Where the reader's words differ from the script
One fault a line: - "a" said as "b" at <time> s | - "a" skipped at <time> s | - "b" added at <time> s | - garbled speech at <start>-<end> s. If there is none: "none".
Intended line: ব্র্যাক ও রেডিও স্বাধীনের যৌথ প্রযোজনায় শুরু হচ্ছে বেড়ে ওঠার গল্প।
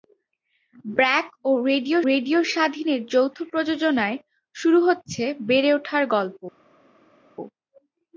- "রেডিও" added at 2.1 s